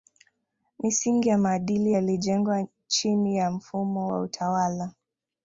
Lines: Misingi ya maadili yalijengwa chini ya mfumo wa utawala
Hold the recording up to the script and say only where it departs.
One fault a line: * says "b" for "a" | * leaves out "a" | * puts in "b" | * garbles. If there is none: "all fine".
all fine